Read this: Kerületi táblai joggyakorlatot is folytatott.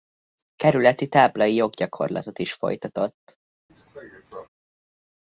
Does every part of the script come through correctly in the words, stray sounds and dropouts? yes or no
no